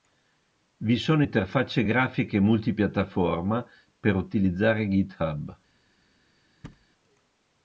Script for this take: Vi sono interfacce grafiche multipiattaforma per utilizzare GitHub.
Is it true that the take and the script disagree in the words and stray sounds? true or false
true